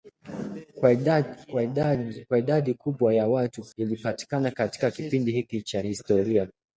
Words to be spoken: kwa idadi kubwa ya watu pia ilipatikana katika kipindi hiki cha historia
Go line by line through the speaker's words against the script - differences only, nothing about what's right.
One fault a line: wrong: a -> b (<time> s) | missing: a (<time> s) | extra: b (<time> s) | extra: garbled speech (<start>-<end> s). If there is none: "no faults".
missing: pia (3.6 s)